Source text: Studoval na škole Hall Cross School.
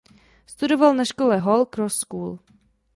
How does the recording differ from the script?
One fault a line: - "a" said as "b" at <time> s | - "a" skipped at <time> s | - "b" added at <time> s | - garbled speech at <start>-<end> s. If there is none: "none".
none